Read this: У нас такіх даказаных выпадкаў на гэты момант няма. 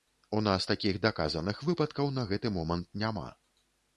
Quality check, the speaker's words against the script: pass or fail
pass